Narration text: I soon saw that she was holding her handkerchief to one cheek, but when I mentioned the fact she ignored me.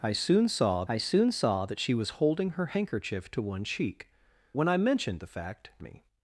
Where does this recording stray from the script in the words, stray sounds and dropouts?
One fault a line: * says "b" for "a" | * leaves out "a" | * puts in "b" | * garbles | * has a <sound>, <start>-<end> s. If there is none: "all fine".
* puts in "I soon saw"
* leaves out "but"
* leaves out "she ignored"